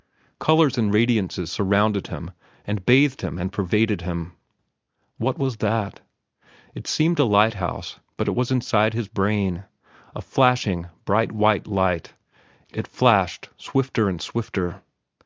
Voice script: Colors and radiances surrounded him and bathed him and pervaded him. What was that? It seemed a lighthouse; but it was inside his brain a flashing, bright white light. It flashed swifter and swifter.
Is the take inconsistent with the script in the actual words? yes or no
no